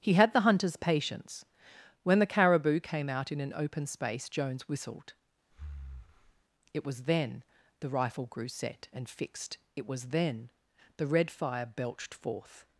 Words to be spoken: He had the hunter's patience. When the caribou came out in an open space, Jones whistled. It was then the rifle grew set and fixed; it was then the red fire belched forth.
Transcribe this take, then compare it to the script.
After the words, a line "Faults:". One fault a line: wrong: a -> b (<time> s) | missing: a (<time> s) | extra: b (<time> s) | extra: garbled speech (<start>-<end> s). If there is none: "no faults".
He had the hunter's patience. When the caribou came out in an open space, Jones whistled. It was then the rifle grew set and fixed; it was then the red fire belched forth.
Faults:
no faults